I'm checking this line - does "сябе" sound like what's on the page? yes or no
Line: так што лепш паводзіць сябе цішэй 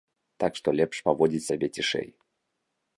yes